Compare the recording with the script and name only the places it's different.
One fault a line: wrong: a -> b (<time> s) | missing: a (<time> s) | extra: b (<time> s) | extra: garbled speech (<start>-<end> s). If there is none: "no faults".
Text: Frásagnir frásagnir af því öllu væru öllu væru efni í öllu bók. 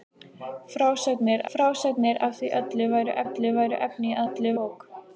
no faults